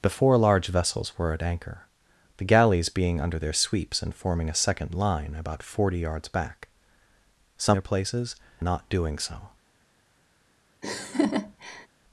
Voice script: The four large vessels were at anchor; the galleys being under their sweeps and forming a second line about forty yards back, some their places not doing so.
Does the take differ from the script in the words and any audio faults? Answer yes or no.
yes